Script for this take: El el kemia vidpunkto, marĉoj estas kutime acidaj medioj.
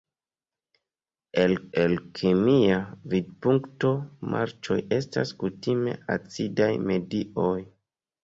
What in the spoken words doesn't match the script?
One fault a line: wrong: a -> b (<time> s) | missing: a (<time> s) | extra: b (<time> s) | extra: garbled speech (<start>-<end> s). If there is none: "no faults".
no faults